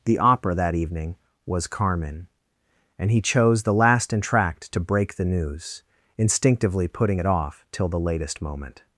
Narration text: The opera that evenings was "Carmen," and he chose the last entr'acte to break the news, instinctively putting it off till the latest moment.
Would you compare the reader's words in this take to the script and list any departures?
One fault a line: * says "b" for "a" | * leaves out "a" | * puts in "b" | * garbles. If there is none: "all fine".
* says "evening" for "evenings"